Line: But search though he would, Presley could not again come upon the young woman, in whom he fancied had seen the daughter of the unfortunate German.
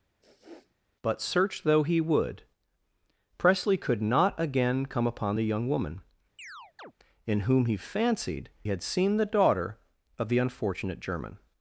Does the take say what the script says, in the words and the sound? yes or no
no